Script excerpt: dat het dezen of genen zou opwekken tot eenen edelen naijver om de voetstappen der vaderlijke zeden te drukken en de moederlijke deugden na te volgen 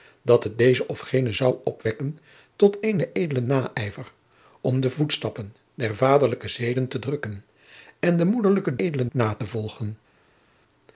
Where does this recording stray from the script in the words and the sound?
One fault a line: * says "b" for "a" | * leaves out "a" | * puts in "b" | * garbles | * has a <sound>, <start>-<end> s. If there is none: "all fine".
* says "edelen" for "deugden"